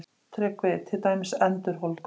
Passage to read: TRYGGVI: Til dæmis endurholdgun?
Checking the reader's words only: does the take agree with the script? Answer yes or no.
yes